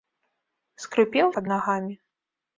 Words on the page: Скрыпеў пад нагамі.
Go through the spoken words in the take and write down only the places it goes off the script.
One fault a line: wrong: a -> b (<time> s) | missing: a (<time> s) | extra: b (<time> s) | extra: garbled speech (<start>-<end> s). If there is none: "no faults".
no faults